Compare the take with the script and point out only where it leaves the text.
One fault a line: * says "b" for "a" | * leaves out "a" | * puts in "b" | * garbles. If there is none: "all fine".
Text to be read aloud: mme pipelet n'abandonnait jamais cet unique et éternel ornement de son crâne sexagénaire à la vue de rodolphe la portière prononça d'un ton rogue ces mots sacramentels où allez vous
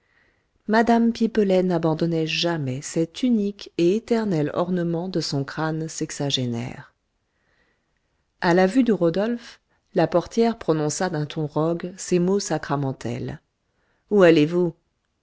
all fine